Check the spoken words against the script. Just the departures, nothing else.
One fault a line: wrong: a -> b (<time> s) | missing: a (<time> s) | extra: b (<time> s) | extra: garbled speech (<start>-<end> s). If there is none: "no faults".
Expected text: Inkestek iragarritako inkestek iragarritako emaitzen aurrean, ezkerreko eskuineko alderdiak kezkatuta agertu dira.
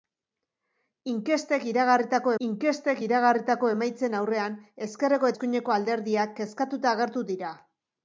no faults